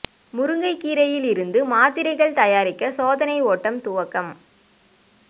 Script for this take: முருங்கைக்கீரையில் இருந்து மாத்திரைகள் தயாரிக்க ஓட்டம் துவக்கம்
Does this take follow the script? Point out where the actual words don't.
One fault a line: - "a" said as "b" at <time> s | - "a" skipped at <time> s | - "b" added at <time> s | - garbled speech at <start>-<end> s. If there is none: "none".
- "சோதனை" added at 2.9 s